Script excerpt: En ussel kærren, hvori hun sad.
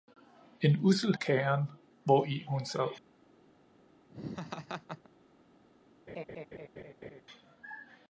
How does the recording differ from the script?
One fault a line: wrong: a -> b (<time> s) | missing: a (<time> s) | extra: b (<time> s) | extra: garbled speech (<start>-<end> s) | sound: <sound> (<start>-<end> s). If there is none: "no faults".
sound: laugh (4.1-5.1 s)
sound: laugh (6.1-7.2 s)